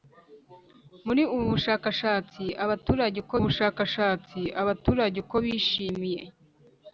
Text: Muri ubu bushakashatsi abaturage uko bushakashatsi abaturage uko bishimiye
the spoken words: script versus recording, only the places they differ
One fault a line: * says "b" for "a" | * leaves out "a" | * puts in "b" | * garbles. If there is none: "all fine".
all fine